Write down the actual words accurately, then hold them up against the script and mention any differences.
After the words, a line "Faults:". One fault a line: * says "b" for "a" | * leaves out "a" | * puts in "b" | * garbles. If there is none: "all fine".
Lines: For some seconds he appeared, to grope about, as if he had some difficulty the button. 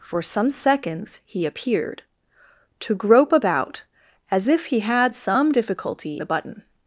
For some seconds he appeared, to grope about, as if he had some difficulty the button.
Faults:
all fine